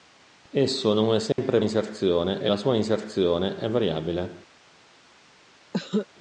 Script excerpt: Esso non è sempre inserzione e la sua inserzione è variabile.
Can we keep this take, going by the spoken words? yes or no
yes